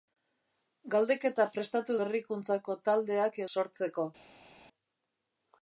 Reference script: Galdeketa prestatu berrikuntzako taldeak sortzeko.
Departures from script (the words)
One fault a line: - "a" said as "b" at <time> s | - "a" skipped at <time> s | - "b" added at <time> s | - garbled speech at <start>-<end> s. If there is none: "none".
none